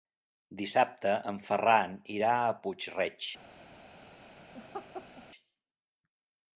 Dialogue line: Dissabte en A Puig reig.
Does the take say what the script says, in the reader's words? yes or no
no